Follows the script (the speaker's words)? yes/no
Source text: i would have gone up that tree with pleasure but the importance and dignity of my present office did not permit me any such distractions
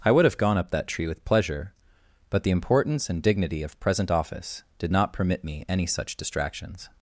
no